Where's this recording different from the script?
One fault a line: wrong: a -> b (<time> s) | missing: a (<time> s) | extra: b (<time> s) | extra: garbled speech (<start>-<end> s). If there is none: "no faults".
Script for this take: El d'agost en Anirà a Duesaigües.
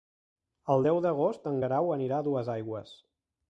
extra: deu (0.9 s)
extra: Guerau (1.6 s)